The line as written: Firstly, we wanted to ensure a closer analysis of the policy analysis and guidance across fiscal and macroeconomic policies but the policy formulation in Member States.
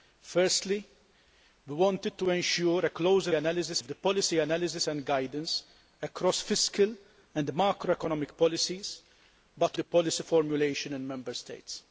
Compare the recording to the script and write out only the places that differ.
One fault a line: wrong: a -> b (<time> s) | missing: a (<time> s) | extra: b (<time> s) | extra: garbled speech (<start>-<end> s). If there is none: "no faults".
no faults